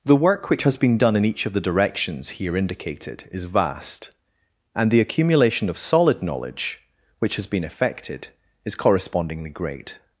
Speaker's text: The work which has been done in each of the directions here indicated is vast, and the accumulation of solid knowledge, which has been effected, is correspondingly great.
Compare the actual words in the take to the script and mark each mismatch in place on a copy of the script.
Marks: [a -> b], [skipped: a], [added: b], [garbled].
The work which has been done in each of the directions here indicated is vast, and the accumulation of solid knowledge, which has been effected, is correspondingly great.